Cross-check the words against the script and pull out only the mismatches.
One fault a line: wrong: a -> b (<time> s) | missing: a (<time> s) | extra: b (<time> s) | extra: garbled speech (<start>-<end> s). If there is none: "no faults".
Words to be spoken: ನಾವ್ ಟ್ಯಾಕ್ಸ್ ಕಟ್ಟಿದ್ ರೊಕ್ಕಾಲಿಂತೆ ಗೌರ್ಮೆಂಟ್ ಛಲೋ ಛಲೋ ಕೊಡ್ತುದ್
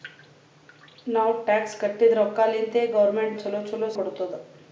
no faults